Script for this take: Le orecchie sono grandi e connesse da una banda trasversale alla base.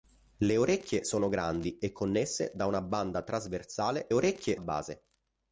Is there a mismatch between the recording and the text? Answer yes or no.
yes